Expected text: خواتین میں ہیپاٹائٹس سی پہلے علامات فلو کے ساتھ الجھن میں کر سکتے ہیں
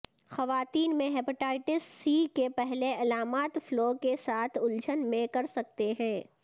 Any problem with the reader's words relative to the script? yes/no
yes